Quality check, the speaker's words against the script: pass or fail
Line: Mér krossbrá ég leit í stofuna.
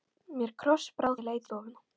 pass